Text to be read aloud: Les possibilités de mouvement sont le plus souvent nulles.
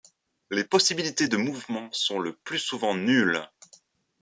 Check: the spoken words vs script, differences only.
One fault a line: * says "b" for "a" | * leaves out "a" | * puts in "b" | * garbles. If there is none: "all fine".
all fine